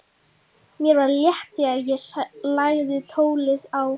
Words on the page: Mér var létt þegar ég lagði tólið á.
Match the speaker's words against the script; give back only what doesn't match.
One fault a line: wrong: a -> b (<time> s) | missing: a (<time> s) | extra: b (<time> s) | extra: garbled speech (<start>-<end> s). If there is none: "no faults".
no faults